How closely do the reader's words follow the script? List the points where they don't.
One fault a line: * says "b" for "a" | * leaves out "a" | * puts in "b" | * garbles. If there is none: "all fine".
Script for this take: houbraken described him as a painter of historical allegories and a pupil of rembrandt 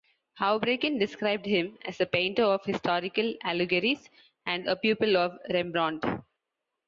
all fine